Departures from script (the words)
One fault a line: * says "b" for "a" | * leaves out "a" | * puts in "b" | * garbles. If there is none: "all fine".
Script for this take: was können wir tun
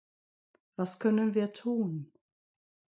all fine